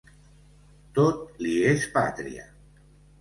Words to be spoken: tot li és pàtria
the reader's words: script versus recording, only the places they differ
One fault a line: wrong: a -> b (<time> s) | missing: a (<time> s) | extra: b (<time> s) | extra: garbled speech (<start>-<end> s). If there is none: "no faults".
no faults